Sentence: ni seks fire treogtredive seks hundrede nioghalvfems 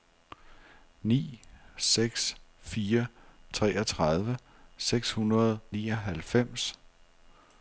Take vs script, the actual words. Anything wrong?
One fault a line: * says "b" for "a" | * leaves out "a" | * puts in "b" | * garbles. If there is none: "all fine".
all fine